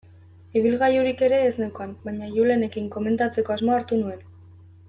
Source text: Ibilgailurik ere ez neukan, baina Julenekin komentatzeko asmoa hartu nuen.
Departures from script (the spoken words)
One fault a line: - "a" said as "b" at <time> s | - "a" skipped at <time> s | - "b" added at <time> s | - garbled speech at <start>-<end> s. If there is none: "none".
none